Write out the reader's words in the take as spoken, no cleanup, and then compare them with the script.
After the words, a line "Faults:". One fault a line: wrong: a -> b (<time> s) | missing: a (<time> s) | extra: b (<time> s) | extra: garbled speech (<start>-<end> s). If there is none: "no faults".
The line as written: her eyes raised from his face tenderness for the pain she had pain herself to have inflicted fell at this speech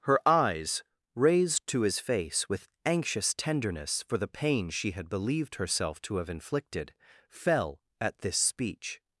her eyes raised to his face with anxious tenderness for the pain she had believed herself to have inflicted fell at this speech
Faults:
wrong: from -> to (1.7 s)
extra: with anxious (2.5 s)
wrong: pain -> believed (5.1 s)